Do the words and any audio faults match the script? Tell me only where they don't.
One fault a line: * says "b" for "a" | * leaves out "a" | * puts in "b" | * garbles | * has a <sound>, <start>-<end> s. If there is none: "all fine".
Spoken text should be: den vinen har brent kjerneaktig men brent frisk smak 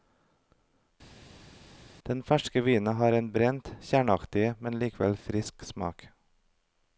* puts in "ferske"
* puts in "en"
* says "likevel" for "brent"